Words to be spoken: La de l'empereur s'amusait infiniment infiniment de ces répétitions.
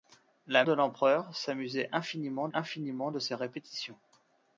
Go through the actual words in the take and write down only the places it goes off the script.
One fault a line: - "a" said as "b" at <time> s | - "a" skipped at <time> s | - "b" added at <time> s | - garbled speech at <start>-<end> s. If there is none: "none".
none